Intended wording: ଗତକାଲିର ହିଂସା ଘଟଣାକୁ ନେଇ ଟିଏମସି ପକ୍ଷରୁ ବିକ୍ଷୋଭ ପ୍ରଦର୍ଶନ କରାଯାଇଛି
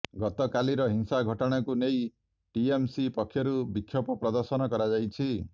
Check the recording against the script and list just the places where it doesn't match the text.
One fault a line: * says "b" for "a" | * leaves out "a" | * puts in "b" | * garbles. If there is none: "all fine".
all fine